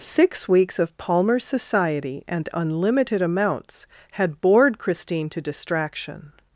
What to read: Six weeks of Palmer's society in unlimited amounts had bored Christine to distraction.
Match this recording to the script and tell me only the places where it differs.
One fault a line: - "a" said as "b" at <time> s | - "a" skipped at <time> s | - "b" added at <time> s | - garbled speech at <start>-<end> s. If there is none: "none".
- "in" said as "and" at 2.3 s